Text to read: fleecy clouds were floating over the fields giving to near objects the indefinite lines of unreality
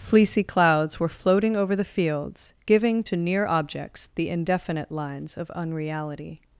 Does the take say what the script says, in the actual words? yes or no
yes